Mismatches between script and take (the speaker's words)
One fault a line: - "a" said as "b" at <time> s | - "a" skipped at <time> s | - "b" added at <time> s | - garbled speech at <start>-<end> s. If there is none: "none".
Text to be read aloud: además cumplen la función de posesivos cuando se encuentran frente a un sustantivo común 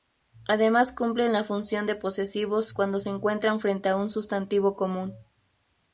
none